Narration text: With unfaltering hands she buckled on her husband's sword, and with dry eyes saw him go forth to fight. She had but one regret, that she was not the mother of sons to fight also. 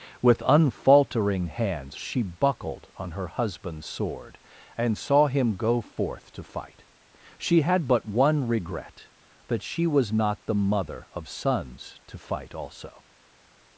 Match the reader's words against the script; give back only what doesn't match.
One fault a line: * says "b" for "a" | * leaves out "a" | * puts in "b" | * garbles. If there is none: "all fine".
* leaves out "with dry eyes"